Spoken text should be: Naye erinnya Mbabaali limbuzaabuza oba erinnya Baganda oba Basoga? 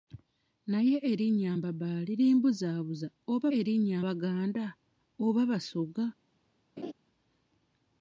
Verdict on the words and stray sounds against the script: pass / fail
fail